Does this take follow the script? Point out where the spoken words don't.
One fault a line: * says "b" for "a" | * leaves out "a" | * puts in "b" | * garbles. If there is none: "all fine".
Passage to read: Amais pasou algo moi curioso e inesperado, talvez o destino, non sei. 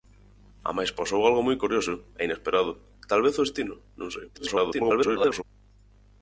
* garbles